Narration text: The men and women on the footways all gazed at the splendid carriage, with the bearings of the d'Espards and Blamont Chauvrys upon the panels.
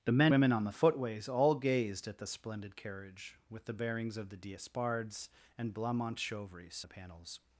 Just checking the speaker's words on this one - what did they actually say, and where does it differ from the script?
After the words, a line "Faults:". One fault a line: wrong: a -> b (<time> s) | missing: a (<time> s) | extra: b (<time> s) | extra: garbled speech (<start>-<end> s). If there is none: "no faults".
The men women on the footways all gazed at the splendid carriage, with the bearings of the d'Espards and Blamont Chauvrys the panels.
Faults:
missing: and (0.3 s)
missing: upon (6.9 s)